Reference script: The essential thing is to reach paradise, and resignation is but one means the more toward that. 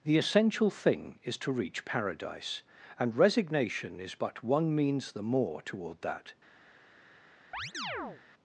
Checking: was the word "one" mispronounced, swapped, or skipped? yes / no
no